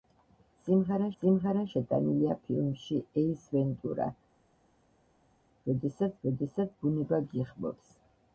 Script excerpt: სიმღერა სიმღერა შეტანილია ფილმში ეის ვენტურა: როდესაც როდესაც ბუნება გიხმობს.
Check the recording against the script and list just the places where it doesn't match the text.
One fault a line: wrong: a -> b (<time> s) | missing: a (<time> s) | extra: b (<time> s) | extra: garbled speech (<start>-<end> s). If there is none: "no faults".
no faults